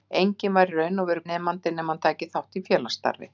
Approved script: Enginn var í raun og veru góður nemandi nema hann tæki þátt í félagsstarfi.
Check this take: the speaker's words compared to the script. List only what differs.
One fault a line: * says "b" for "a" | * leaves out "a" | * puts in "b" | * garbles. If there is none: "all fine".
* leaves out "góður"